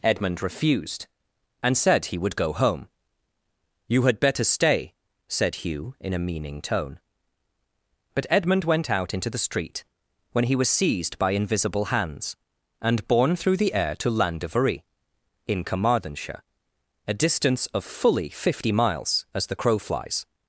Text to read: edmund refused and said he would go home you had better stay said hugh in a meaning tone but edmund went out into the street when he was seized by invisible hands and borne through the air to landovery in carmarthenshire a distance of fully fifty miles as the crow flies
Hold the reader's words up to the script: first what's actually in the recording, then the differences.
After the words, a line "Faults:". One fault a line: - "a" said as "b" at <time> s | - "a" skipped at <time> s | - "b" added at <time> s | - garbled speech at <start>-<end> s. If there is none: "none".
edmund refused and said he would go home you had better stay said hugh in a meaning tone but edmund went out into the street when he was seized by invisible hands and borne through the air to landovery in carmarthenshire a distance of fully fifty miles as the crow flies
Faults:
none